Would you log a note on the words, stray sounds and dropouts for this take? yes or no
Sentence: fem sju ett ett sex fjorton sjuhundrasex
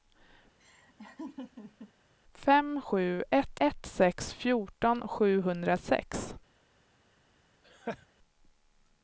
yes